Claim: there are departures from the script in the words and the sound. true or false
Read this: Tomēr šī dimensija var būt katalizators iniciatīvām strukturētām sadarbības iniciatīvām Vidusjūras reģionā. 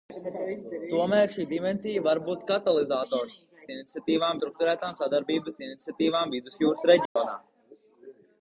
true